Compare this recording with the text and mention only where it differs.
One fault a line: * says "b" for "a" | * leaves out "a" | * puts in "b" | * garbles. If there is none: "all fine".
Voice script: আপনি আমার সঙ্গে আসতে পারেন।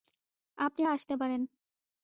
* leaves out "আমার সঙ্গে"